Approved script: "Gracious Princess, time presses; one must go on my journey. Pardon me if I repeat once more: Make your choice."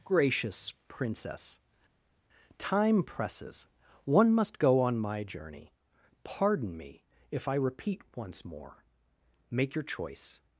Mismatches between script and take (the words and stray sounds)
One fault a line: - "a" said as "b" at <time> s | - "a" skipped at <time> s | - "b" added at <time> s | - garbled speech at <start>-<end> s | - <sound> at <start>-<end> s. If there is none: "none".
none